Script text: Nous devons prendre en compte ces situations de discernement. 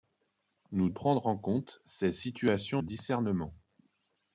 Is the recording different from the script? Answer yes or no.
yes